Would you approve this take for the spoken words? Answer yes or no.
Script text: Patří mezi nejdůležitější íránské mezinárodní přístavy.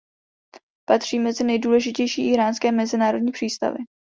yes